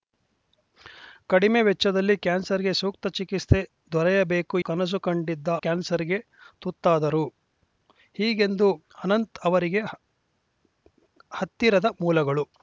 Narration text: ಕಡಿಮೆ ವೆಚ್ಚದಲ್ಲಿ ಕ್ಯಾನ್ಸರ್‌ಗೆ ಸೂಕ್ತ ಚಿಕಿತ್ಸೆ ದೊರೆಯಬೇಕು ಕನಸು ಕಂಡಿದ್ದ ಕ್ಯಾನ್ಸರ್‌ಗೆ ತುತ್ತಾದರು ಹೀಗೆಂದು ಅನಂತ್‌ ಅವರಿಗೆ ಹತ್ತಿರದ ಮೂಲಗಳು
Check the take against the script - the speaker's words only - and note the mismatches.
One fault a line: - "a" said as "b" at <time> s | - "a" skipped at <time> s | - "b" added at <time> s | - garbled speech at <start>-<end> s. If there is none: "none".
none